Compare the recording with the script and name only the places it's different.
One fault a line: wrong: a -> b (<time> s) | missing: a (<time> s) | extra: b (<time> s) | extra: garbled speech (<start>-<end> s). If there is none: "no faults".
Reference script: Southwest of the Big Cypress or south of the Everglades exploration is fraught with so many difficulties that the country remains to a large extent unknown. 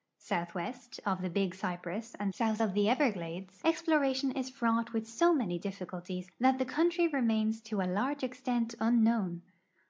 wrong: or -> and (2.1 s)